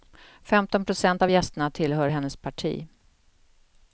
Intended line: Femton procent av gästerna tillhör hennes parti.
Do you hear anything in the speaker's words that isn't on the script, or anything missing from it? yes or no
no